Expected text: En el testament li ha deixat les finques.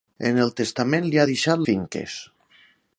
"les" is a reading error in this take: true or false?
true